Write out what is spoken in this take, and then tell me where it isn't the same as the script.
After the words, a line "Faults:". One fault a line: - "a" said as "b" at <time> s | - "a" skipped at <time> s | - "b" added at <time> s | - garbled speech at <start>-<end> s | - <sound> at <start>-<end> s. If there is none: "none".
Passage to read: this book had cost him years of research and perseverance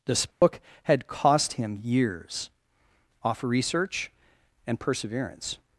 this book had cost him years off research and perseverance
Faults:
- dropout at 0.3-0.4 s
- "of" said as "off" at 3.2 s